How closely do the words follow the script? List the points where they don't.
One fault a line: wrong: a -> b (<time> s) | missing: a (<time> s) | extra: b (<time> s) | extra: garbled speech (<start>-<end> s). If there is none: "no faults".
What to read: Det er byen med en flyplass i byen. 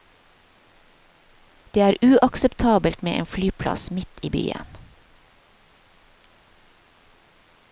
wrong: byen -> uakseptabelt (2.0 s)
extra: midt (3.9 s)